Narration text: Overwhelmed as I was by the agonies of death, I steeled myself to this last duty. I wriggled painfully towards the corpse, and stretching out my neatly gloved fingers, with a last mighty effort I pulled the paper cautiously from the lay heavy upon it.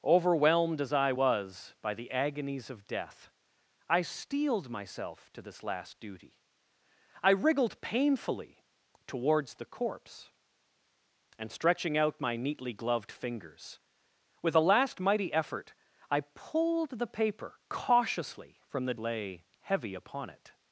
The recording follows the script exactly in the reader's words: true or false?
true